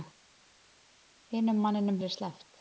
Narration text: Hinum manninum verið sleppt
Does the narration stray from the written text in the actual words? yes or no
no